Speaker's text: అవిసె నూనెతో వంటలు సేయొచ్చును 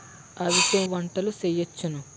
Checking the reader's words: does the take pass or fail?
fail